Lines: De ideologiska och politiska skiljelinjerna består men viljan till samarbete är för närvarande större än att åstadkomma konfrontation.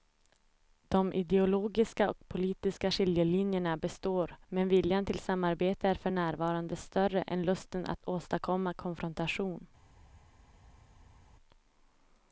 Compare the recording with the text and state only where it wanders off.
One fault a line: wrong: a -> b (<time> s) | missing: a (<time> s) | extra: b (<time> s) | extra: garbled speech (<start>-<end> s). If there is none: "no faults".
extra: lusten (7.4 s)